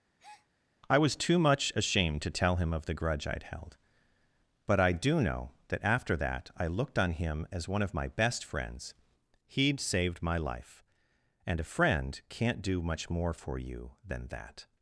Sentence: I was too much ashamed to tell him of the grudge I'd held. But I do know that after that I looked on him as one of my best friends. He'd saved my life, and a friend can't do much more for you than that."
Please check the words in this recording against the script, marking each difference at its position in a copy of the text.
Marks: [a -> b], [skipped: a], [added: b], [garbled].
I was too much ashamed to tell him of the grudge I'd held. But I do know that after that I looked on him as one of my best friends. He'd saved my life, and a friend can't do much more for you than that."